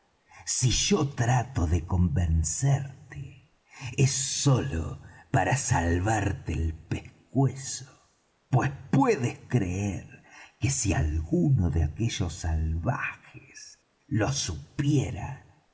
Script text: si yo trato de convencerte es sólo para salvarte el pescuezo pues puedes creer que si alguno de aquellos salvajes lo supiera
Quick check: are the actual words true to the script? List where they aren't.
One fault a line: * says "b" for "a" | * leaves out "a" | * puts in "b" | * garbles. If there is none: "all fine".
all fine